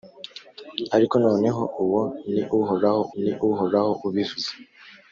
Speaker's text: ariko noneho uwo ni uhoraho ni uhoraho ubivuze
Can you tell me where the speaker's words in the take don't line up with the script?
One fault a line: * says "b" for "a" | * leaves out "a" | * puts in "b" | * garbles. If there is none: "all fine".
all fine